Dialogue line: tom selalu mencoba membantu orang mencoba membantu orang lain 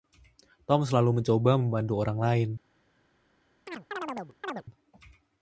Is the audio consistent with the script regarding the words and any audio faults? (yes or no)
no